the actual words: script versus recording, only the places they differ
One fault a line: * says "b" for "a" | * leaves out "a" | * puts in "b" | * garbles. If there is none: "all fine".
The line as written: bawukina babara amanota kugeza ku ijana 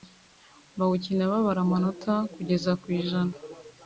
all fine